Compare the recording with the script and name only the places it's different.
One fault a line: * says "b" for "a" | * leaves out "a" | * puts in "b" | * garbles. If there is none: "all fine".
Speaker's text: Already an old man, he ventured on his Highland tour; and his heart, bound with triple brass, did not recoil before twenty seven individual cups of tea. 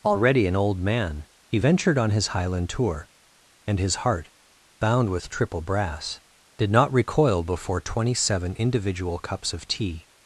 all fine